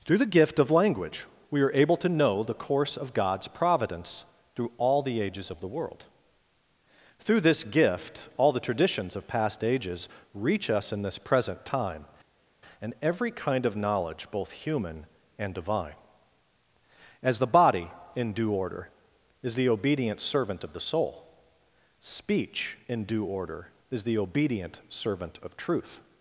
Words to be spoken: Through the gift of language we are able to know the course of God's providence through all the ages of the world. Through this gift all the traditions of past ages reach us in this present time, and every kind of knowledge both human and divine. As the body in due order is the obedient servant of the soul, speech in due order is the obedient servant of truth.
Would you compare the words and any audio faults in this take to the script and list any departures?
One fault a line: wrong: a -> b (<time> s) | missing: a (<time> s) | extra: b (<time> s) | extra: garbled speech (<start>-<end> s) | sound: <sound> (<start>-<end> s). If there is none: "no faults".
no faults